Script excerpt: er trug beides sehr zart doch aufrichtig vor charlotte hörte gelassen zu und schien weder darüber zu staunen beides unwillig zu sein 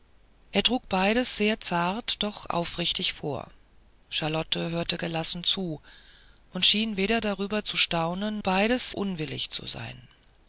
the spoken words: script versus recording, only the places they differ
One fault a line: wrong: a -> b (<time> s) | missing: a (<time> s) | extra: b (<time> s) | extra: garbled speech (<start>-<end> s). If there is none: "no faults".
no faults